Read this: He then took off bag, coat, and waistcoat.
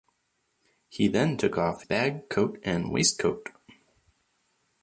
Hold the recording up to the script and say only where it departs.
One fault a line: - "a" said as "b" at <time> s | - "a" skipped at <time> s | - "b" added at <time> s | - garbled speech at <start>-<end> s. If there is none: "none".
none